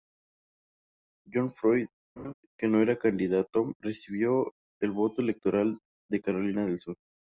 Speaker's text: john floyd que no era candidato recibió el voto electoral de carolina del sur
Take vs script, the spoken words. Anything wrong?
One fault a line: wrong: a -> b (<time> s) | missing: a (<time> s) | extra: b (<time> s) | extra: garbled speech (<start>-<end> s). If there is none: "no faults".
no faults